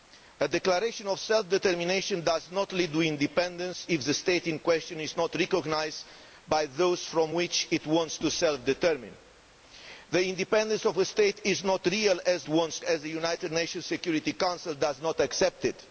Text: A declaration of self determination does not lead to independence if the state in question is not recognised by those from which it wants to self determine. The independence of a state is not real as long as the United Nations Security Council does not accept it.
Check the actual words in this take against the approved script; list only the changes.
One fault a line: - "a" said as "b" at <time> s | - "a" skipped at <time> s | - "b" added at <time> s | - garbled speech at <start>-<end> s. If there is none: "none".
- "long" said as "wants" at 12.5 s